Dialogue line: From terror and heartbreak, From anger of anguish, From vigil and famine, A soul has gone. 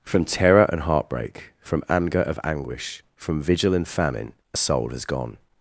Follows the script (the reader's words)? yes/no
yes